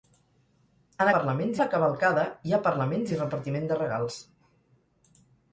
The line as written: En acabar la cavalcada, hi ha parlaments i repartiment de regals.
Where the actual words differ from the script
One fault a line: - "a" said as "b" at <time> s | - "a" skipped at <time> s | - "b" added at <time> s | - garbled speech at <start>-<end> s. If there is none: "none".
- "acabar" said as "parlaments" at 1.1 s